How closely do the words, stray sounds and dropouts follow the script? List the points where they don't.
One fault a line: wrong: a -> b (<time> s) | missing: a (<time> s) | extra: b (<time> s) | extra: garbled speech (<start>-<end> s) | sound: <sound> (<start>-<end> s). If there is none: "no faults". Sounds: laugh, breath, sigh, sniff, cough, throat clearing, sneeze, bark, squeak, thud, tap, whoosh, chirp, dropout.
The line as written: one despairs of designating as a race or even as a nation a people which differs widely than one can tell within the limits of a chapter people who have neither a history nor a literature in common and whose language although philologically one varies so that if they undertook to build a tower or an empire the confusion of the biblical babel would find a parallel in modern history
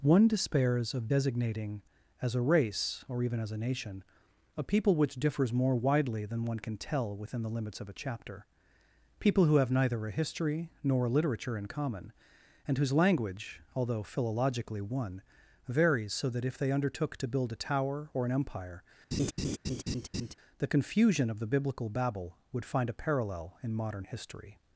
extra: more (5.5 s)
sound: laugh (19.1-20.3 s)